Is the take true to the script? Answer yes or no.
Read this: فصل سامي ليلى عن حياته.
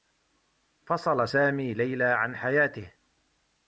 yes